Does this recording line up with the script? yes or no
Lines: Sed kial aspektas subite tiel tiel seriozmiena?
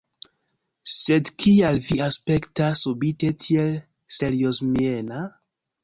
no